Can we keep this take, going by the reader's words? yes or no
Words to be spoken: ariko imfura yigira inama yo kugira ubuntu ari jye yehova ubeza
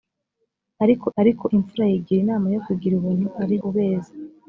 no